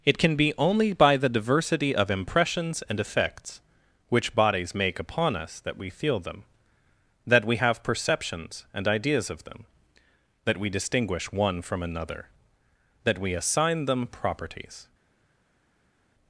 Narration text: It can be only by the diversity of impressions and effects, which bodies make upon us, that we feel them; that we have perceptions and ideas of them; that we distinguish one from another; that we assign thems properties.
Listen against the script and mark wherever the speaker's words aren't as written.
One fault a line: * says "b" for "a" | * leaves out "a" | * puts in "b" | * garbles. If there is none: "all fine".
* says "them" for "thems"